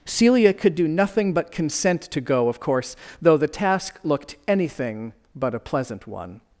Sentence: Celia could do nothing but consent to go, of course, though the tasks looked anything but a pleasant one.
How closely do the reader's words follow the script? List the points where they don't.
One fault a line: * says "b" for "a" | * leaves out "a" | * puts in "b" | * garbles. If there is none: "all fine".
* says "task" for "tasks"